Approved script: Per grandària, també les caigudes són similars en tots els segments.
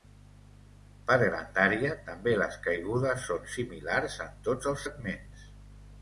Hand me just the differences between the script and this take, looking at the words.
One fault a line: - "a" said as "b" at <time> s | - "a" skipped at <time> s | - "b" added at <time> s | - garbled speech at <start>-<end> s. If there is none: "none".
none